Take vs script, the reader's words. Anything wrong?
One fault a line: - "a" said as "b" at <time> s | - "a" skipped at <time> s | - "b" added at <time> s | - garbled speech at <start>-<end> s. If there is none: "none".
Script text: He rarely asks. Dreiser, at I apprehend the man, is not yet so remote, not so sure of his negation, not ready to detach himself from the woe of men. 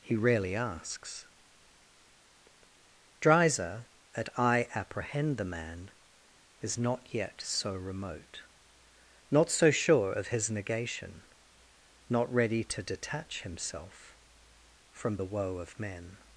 none